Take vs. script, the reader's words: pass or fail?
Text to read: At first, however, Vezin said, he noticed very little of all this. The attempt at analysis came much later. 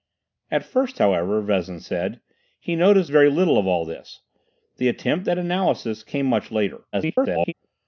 fail